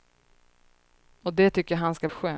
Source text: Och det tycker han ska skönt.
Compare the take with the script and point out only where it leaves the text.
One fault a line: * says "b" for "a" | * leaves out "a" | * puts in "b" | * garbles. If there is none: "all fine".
all fine